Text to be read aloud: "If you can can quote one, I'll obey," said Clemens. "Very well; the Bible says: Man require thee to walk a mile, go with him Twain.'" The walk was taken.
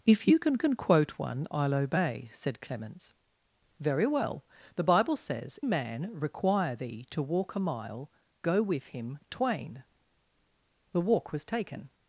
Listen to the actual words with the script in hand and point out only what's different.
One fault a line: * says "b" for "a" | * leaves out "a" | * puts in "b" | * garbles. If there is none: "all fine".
all fine